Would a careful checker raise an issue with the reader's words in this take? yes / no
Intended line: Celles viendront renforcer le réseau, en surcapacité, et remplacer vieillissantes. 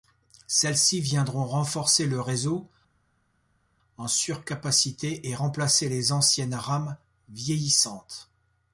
yes